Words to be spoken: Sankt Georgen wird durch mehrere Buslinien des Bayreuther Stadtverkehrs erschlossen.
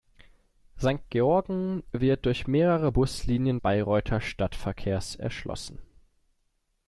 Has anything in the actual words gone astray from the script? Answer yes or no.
yes